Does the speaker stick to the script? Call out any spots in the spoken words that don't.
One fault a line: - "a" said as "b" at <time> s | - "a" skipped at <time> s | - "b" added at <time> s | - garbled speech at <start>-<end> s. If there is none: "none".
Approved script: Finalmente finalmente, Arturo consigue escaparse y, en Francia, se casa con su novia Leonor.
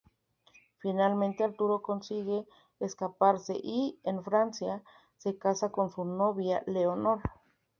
- "finalmente" skipped at 1.4 s